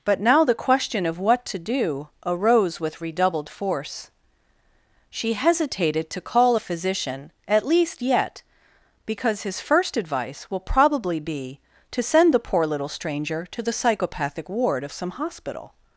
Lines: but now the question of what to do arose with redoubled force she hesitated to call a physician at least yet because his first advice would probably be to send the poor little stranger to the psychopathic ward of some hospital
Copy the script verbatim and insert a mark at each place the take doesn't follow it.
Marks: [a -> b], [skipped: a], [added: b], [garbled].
but now the question of what to do arose with redoubled force she hesitated to call a physician at least yet because his first advice [would -> will] probably be to send the poor little stranger to the psychopathic ward of some hospital